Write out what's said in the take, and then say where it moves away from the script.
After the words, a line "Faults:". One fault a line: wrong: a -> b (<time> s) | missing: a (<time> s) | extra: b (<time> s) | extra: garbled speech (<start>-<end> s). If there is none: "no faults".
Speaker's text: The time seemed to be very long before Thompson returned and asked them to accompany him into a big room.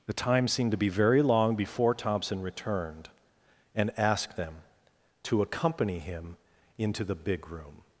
The time seemed to be very long before Thompson returned and asked them to accompany him into the big room.
Faults:
wrong: a -> the (7.0 s)